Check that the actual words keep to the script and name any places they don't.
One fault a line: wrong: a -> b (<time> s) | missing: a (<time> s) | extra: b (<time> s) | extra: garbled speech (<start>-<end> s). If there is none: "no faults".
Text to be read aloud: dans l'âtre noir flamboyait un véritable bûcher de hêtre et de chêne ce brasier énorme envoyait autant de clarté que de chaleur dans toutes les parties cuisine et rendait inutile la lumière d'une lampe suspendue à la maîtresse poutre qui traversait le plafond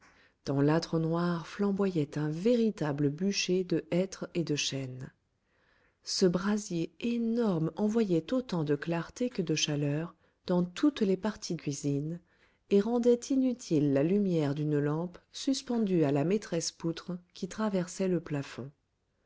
no faults